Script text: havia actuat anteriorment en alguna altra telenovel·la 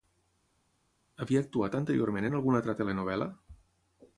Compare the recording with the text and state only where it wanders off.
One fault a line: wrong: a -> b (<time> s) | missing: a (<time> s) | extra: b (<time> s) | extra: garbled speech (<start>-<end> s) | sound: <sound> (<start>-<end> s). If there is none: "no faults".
no faults